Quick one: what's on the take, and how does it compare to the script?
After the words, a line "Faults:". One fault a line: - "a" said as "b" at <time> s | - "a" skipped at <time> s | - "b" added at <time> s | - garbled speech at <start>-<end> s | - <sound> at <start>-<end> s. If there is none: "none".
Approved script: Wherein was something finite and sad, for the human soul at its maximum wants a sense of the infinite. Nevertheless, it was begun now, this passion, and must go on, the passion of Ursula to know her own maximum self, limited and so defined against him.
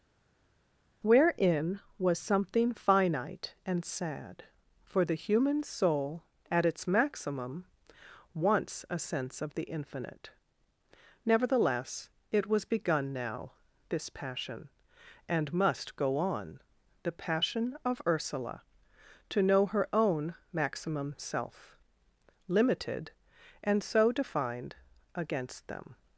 Wherein was something finite and sad, for the human soul at its maximum wants a sense of the infinite. Nevertheless, it was begun now, this passion, and must go on, the passion of Ursula to know her own maximum self, limited and so defined against them.
Faults:
- "him" said as "them" at 25.7 s